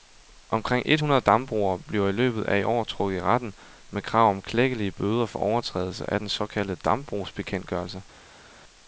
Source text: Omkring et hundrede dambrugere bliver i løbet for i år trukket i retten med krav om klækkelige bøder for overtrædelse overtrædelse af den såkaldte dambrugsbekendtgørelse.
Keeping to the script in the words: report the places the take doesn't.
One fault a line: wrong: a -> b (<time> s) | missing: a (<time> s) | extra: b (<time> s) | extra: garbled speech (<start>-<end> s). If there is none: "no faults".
wrong: for -> af (2.4 s)
missing: overtrædelse (6.1 s)